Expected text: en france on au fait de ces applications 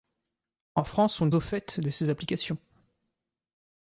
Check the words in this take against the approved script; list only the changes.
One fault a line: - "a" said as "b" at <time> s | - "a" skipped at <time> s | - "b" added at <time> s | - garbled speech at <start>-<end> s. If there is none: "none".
none